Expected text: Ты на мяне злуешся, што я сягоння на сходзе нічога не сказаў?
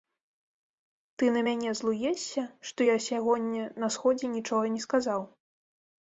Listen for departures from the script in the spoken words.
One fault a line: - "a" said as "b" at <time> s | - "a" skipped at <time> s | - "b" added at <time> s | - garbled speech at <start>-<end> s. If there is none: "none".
none